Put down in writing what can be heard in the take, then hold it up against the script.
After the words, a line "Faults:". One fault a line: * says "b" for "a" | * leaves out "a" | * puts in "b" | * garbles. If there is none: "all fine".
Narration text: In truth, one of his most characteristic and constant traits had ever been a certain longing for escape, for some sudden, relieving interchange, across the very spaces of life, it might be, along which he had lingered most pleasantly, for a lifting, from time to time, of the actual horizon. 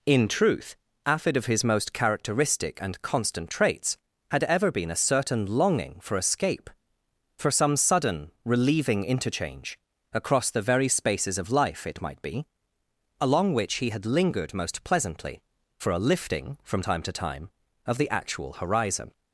In truth, afid of his most characteristic and constant traits had ever been a certain longing for escape, for some sudden, relieving interchange, across the very spaces of life, it might be, along which he had lingered most pleasantly, for a lifting, from time to time, of the actual horizon.
Faults:
* says "afid" for "one"